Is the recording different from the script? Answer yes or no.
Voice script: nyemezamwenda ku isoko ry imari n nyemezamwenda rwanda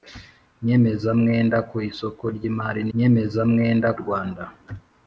no